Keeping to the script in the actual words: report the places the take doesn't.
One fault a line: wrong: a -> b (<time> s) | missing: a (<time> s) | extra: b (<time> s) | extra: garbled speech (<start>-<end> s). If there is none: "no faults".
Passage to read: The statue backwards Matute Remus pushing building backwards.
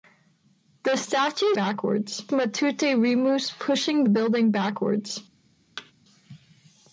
no faults